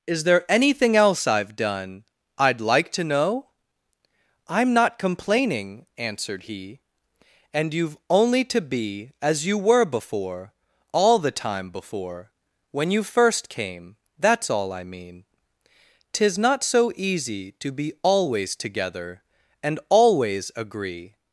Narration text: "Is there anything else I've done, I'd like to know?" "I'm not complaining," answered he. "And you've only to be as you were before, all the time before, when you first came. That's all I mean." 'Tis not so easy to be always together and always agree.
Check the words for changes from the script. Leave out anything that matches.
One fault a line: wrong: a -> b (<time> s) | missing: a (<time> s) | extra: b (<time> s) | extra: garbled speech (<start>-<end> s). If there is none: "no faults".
no faults